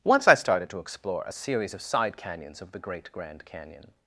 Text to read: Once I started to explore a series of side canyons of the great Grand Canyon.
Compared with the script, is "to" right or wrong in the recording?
right